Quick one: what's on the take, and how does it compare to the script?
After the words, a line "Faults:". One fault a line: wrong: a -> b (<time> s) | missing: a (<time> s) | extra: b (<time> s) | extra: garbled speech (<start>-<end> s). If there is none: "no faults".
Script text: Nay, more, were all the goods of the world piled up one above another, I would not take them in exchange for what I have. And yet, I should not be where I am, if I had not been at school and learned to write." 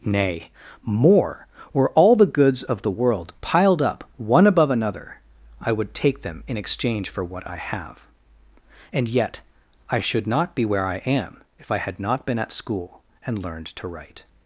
Nay, more, were all the goods of the world piled up one above another, I would take them in exchange for what I have. And yet, I should not be where I am, if I had not been at school and learned to write."
Faults:
missing: not (5.9 s)